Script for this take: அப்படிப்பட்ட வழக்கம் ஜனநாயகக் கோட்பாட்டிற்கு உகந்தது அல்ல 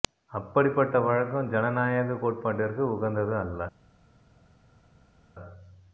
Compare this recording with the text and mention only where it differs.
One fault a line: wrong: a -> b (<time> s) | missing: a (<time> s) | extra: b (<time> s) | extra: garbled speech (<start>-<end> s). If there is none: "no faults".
no faults